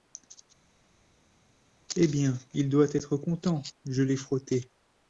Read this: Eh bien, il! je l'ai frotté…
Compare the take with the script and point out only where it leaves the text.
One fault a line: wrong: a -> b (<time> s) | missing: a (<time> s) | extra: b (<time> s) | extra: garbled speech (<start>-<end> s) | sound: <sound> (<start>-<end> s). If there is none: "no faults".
extra: doit être content (2.7 s)